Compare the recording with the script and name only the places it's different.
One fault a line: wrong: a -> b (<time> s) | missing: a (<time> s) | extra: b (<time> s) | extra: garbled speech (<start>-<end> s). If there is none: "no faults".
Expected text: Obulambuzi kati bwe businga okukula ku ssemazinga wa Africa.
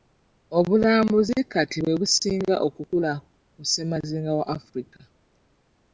no faults